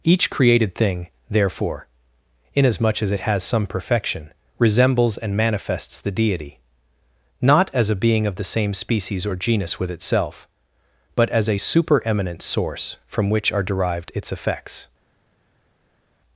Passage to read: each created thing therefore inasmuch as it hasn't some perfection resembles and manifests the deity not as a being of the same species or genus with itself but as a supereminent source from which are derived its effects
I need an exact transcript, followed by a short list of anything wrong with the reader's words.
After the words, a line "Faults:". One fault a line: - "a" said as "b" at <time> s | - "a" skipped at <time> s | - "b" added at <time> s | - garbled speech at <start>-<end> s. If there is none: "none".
each created thing therefore inasmuch as it has some perfection resembles and manifests the deity not as a being of the same species or genus with itself but as a supereminent source from which are derived its effects
Faults:
- "hasn't" said as "has" at 3.2 s